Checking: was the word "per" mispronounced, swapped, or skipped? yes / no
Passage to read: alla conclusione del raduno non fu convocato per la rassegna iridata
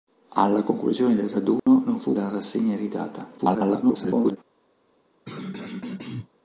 yes